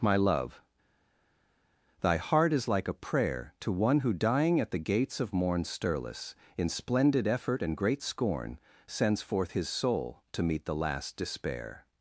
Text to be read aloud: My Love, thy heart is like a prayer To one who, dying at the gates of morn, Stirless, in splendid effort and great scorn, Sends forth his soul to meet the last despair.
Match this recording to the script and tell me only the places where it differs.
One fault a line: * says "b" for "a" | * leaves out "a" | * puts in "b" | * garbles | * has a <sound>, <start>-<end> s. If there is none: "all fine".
all fine